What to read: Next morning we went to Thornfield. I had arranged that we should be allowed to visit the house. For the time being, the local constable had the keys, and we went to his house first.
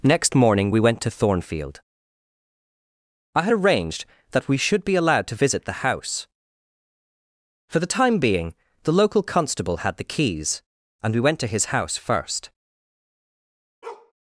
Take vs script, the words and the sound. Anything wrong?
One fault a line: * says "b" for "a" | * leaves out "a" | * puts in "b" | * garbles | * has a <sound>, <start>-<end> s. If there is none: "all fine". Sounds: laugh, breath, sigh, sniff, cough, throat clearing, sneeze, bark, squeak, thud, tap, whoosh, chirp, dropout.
* has a bark, 13.8-14.1 s